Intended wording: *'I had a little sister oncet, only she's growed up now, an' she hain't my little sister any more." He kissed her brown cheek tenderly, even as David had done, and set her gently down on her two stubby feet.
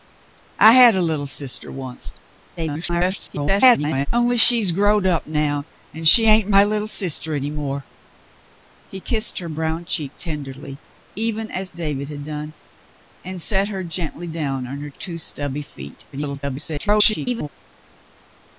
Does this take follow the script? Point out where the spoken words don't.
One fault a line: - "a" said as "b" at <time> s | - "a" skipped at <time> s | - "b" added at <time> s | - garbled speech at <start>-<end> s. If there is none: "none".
- garbled speech at 2.6-4.1 s
- garbled speech at 16.1-17.5 s